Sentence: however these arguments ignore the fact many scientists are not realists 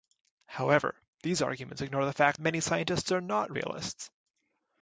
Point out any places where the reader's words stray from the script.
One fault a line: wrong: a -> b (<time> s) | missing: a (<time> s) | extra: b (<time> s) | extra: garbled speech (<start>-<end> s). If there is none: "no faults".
no faults